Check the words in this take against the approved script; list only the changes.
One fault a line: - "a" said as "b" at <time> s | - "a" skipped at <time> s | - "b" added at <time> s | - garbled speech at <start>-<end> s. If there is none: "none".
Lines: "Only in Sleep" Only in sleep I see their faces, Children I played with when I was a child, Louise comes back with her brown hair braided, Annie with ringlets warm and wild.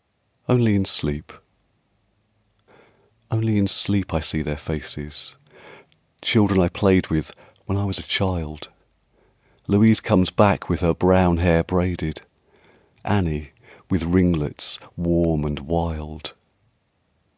none